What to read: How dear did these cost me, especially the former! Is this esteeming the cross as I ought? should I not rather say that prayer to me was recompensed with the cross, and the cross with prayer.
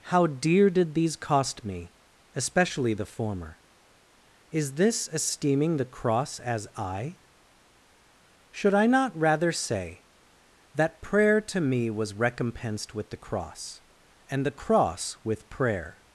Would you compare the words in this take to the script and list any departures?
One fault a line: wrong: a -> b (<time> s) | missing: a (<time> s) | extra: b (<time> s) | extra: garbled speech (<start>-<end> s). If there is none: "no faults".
missing: ought (7.2 s)